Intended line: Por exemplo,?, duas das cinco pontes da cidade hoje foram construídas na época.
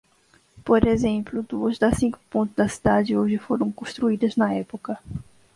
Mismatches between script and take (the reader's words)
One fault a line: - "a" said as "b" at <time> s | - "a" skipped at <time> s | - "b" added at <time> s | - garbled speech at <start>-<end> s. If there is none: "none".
none